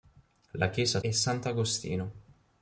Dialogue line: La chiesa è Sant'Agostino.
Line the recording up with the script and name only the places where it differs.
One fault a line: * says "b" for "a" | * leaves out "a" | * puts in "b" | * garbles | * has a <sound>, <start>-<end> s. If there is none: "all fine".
all fine